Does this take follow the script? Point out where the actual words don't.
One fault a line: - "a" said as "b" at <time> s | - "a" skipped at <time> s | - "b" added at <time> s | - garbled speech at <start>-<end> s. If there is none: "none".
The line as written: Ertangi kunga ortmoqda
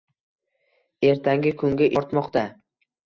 none